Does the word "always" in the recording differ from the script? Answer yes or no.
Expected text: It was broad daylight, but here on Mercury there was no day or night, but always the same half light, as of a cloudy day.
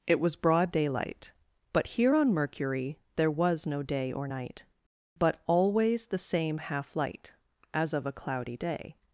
no